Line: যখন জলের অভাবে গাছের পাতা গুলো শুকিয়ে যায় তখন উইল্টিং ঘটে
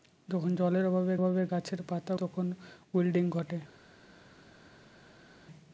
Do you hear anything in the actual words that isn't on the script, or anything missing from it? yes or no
yes